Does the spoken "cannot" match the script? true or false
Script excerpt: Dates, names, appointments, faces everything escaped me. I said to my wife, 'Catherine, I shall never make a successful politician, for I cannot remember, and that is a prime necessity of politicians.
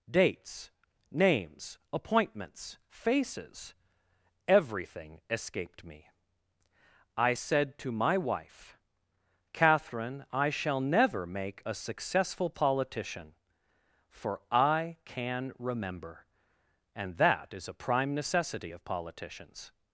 false